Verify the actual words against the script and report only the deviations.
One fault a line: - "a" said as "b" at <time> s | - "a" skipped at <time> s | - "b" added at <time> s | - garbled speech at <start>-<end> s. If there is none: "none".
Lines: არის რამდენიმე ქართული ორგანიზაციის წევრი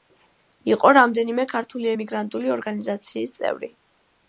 - "არის" said as "იყო" at 0.7 s
- "ემიგრანტული" added at 1.9 s